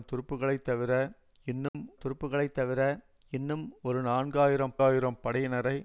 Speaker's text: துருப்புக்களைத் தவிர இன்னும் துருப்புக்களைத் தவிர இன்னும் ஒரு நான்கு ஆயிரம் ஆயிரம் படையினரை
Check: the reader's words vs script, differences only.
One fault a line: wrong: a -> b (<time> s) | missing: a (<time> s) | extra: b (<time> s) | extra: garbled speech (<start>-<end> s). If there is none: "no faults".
no faults